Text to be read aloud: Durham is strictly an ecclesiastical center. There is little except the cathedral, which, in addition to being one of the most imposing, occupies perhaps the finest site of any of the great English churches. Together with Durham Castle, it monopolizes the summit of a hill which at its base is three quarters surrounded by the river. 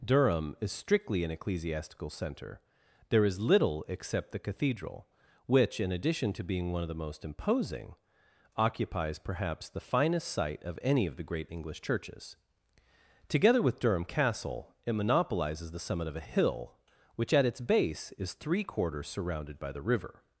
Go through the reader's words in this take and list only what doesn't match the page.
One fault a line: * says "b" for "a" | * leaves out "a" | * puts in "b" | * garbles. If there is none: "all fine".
all fine